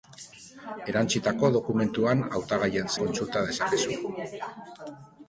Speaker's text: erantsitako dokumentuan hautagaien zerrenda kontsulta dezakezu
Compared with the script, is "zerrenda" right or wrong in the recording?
wrong